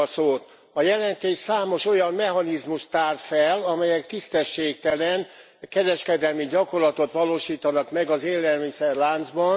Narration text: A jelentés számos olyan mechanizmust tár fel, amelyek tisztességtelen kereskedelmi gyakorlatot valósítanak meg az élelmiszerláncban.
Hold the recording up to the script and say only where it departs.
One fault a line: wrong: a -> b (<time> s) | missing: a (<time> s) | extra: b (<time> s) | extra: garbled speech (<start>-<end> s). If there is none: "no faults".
no faults